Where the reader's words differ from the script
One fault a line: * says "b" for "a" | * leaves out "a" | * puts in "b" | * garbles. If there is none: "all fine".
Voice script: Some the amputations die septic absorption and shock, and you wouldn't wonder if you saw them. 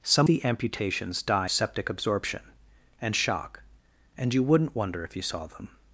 all fine